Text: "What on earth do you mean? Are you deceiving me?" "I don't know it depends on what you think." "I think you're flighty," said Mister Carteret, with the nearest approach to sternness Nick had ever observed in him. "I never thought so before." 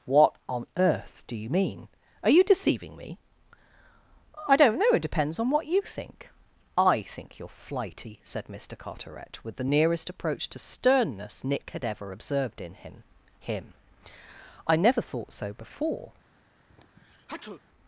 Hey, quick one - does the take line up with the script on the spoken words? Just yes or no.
no